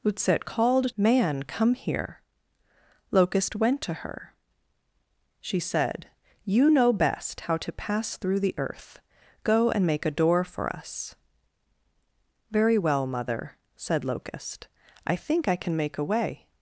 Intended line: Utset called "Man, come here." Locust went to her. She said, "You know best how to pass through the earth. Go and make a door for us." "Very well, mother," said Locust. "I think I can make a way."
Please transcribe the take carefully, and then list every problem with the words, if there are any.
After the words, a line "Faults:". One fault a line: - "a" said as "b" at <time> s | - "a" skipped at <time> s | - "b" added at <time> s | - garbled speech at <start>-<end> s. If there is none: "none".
Utset called "Man, come here." Locust went to her. She said, "You know best how to pass through the earth. Go and make a door for us." "Very well, mother," said Locust. "I think I can make a way."
Faults:
none